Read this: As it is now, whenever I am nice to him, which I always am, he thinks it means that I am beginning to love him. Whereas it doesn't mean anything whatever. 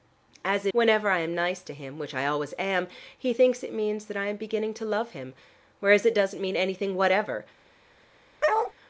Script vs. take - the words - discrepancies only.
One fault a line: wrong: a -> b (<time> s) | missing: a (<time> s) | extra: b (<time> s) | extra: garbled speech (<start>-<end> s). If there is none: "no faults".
missing: is now (0.7 s)